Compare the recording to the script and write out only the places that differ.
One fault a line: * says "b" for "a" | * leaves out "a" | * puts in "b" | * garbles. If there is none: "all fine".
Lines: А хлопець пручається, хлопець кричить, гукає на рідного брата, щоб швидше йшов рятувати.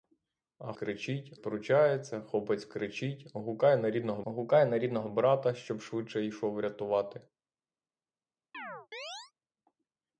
* says "кричить" for "хлопець"
* puts in "гукає на рідного"